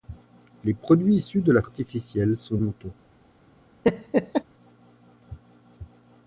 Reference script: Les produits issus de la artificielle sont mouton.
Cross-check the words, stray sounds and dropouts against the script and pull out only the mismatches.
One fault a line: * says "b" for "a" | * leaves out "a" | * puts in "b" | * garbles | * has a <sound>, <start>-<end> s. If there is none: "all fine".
* has a laugh, 3.8-4.4 s